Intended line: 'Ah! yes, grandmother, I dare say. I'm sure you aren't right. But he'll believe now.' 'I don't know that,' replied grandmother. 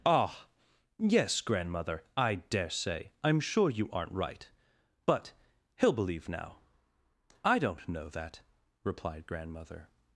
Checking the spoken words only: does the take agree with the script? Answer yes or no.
yes